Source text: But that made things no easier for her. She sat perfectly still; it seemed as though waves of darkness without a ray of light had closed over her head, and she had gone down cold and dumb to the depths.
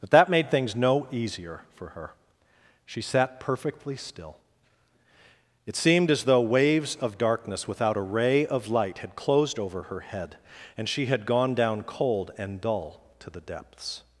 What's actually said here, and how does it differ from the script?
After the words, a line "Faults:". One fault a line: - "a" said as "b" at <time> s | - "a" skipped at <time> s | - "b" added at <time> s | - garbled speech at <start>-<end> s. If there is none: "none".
But that made things no easier for her. She sat perfectly still; it seemed as though waves of darkness without a ray of light had closed over her head, and she had gone down cold and dull to the depths.
Faults:
- "dumb" said as "dull" at 12.6 s